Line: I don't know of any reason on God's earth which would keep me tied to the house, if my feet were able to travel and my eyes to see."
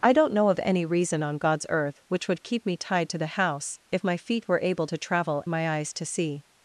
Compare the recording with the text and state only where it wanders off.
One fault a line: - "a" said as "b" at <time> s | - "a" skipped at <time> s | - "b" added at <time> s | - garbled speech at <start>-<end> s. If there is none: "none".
- "and" skipped at 5.4 s